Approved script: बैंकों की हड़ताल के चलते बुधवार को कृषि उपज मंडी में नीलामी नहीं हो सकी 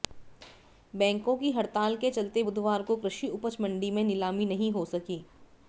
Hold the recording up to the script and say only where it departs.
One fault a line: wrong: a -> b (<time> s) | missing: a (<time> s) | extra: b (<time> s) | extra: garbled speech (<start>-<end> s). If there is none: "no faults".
no faults